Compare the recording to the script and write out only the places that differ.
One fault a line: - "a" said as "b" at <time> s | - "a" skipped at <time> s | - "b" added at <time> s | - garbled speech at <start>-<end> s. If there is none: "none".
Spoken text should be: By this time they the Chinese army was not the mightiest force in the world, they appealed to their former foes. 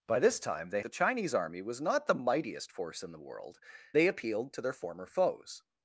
none